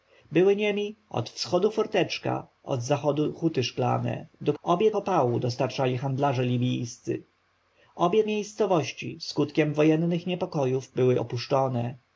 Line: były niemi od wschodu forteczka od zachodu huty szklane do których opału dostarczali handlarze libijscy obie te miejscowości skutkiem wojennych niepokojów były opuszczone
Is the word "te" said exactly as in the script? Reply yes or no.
no